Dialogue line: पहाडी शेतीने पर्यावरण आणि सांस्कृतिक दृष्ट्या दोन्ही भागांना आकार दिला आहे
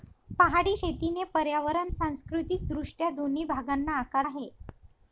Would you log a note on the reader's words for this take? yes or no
yes